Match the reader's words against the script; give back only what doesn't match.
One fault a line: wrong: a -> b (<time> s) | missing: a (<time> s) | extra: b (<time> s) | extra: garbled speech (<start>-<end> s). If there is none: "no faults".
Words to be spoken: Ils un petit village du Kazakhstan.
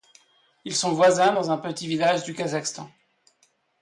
extra: sont voisins dans (0.8 s)